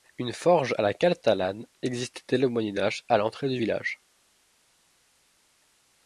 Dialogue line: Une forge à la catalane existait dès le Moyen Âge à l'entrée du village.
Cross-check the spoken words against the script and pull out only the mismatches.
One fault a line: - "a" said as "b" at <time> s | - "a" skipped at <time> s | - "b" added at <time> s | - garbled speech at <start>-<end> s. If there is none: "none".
none